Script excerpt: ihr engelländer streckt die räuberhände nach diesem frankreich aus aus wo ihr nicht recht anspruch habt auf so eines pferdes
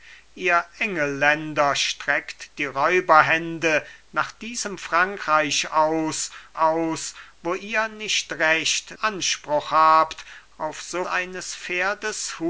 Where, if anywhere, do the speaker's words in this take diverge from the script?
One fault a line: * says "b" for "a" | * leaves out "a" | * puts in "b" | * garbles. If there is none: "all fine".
all fine